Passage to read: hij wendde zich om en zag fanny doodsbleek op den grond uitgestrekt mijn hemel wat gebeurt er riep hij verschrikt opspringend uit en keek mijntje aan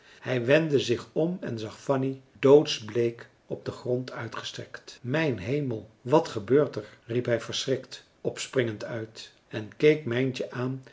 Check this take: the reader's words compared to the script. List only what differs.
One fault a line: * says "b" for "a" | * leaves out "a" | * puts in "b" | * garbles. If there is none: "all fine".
all fine